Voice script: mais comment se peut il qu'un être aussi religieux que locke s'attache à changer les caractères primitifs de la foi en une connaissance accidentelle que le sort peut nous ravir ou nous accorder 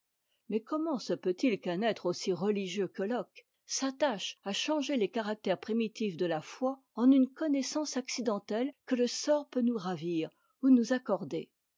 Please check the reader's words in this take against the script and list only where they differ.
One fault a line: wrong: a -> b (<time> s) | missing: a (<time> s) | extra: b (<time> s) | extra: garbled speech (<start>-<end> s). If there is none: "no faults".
no faults